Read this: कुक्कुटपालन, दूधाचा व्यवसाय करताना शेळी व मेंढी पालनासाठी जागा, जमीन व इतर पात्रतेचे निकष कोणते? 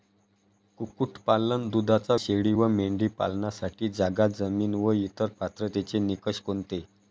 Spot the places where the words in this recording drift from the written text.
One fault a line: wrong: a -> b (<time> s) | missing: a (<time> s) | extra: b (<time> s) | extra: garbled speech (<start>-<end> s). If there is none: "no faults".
missing: व्यवसाय करताना (2.1 s)